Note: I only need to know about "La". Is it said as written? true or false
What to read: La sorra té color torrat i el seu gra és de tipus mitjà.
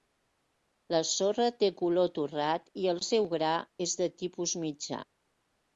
true